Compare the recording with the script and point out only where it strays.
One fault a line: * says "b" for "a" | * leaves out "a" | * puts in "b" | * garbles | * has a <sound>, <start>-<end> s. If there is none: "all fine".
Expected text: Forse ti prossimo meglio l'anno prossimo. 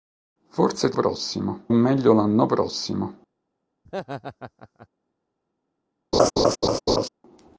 * has a laugh, 3.9-4.9 s
* has a laugh, 6.1-7.1 s